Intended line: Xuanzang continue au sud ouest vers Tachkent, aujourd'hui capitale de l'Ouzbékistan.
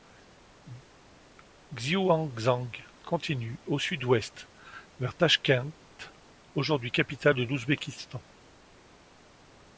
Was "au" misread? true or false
false